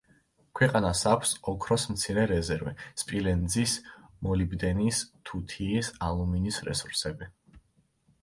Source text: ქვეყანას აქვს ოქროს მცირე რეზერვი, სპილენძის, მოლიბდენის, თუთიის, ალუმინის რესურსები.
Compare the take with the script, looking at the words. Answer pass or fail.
pass